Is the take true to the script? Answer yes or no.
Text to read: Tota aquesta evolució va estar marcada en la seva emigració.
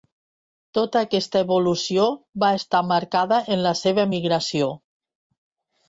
yes